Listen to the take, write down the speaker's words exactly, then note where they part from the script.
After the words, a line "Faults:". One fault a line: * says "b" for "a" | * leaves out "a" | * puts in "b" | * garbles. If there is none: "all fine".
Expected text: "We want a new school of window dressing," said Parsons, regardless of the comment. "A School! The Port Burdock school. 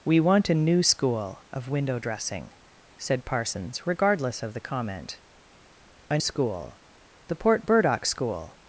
"We want a new school of window dressing," said Parsons, regardless of the comment. "A School! The Port Burdock school.
Faults:
all fine